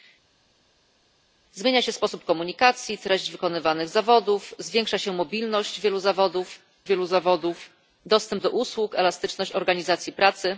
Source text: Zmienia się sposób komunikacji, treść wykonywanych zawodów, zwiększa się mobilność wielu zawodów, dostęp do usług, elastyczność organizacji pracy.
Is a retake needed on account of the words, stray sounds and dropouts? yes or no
yes